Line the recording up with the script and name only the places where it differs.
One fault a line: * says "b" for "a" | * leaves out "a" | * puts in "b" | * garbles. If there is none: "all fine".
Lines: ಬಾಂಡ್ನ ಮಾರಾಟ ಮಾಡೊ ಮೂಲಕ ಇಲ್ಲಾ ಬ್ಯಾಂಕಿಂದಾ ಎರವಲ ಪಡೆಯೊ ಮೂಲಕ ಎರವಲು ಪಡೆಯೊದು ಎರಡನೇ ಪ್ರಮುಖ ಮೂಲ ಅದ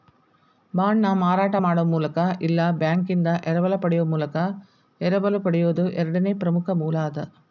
all fine